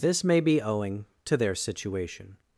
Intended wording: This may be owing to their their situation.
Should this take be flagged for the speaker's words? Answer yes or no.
yes